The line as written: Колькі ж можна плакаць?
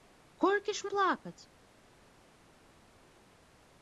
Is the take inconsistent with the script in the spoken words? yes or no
yes